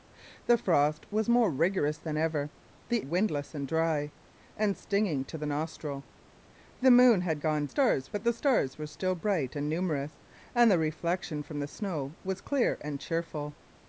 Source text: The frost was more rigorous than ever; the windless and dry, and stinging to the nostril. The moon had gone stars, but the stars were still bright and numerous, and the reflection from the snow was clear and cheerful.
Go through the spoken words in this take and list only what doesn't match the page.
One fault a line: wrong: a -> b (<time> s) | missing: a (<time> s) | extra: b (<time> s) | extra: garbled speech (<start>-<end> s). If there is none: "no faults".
no faults